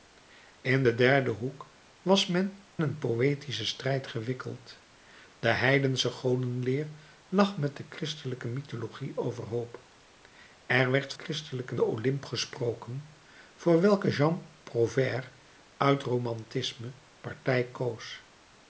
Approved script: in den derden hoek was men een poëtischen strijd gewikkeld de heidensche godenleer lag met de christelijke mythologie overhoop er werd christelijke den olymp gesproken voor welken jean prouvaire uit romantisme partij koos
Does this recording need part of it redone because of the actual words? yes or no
no